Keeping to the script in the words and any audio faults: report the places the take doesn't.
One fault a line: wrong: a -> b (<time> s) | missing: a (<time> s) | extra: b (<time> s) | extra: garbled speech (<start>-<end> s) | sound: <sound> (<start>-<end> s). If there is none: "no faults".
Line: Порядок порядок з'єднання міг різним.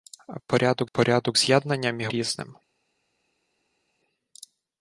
no faults